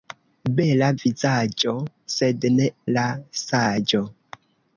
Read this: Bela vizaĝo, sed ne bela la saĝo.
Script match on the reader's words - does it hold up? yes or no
no